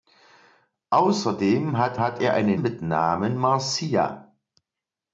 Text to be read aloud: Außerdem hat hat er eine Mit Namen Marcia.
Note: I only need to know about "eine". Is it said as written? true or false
true